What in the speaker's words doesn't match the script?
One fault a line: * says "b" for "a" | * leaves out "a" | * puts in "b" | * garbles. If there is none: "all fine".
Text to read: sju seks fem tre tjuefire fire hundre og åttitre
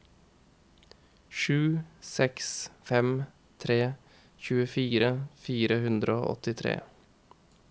all fine